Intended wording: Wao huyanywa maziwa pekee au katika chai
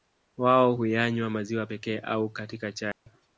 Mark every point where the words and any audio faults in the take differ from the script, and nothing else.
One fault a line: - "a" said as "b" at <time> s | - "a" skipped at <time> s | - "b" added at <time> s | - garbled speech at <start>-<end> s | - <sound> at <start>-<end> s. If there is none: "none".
- dropout at 2.9-3.1 s